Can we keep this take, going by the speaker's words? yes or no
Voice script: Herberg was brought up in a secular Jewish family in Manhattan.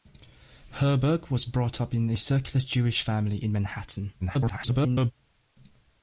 no